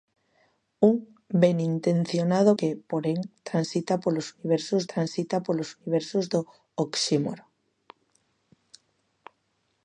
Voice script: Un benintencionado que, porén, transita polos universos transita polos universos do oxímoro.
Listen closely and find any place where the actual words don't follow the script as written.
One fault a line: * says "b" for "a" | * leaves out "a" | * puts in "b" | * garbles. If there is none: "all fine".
all fine